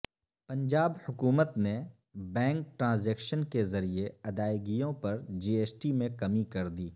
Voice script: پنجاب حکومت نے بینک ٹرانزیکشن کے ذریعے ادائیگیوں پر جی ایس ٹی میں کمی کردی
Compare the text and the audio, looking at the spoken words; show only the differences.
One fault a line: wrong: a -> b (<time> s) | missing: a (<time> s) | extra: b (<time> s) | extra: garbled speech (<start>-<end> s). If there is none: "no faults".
no faults